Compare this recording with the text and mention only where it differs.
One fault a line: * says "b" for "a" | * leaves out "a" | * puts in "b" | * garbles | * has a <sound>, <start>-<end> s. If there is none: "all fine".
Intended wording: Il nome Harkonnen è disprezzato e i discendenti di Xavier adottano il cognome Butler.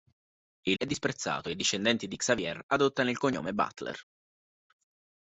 * leaves out "nome Harkonnen"